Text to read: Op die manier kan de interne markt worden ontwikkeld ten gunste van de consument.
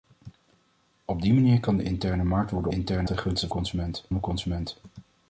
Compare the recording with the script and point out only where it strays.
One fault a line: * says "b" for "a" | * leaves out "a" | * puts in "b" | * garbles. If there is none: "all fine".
* says "interne" for "ontwikkeld"
* says "consument" for "van"